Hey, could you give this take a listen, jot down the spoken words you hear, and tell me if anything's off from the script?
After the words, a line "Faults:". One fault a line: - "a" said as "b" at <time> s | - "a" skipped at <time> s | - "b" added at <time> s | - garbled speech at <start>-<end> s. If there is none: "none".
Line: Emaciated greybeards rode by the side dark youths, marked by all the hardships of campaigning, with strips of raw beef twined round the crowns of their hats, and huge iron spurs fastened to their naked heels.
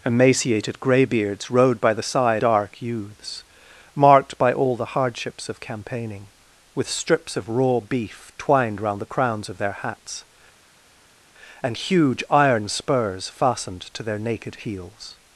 Emaciated greybeards rode by the side dark youths, marked by all the hardships of campaigning, with strips of raw beef twined round the crowns of their hats, and huge iron spurs fastened to their naked heels.
Faults:
none